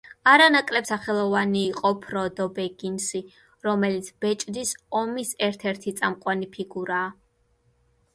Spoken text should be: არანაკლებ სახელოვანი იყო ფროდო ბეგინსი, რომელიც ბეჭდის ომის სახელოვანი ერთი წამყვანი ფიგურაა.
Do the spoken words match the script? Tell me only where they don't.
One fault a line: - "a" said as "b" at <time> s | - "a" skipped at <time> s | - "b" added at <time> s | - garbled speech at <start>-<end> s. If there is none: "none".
- "სახელოვანი" said as "ერთ" at 5.5 s